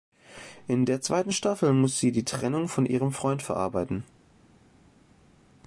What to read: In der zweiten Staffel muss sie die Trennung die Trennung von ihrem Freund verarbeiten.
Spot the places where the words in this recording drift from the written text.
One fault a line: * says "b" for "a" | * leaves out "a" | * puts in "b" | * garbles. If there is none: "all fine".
* leaves out "die Trennung"